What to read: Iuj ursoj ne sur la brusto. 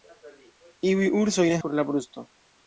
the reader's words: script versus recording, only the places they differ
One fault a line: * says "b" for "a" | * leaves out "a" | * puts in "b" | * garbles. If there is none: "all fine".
all fine